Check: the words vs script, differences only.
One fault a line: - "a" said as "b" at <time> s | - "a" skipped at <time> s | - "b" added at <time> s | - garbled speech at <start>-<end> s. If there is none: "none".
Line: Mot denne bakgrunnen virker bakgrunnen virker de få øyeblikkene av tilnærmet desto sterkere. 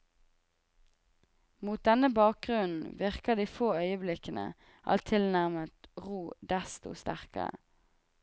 - "bakgrunnen virker" skipped at 3.4 s
- "ro" added at 6.1 s